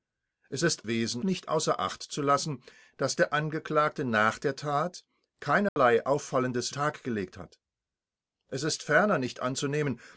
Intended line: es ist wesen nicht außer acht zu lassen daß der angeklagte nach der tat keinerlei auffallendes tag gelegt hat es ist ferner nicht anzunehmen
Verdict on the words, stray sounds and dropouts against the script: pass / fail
fail